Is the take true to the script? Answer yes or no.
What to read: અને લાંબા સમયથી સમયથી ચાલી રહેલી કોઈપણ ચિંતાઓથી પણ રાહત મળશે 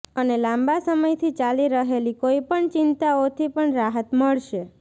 no